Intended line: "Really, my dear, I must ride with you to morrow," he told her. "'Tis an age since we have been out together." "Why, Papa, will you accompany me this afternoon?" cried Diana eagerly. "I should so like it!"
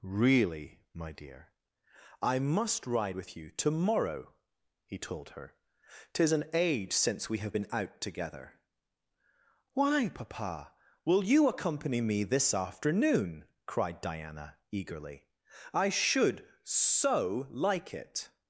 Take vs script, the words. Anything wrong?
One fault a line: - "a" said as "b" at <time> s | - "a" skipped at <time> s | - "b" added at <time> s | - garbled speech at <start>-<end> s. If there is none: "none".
none